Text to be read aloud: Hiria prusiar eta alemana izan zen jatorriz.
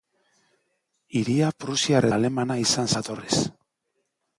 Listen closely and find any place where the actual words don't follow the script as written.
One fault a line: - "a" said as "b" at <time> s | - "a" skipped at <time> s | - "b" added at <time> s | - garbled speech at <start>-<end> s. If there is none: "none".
- "eta" skipped at 2.1 s
- "zen" skipped at 2.9 s